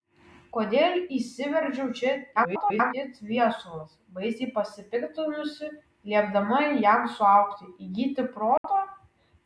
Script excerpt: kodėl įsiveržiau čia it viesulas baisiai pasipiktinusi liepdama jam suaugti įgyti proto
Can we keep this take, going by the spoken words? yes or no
no